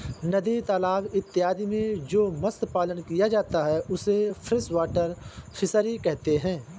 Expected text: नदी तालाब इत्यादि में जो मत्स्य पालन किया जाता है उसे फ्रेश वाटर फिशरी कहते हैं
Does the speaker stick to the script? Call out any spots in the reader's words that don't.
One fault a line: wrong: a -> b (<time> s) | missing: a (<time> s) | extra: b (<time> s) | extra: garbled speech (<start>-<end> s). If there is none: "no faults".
no faults